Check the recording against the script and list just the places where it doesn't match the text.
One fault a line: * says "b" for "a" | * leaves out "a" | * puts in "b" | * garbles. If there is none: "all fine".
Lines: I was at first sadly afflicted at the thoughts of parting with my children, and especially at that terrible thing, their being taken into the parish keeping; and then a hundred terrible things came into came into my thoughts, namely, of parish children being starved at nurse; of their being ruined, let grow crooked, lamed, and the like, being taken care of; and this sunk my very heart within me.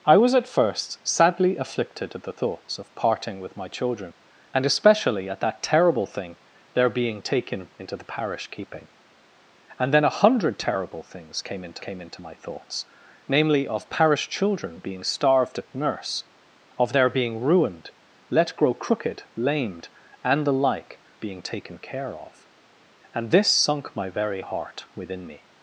all fine